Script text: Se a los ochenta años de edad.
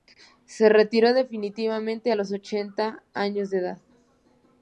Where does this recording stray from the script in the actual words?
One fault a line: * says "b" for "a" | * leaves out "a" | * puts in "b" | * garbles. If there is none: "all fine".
* puts in "retiró definitivamente"